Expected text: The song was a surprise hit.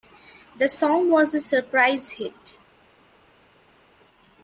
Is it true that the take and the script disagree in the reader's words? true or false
false